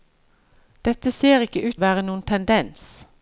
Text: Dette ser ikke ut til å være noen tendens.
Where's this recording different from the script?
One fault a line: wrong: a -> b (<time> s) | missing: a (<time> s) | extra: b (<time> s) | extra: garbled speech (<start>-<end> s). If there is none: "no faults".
missing: til (1.8 s)